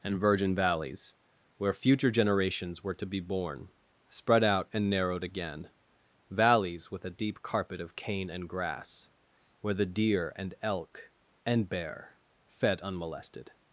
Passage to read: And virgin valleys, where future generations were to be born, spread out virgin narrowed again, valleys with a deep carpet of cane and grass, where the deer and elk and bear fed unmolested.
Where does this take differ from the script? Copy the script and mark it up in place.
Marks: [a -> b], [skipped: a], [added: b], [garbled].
And virgin valleys, where future generations were to be born, spread out [virgin -> and] narrowed again, valleys with a deep carpet of cane and grass, where the deer and elk and bear fed unmolested.